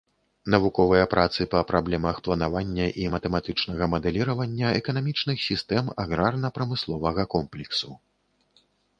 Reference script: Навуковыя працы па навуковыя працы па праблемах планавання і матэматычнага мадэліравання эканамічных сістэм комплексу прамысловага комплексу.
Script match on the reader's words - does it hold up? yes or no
no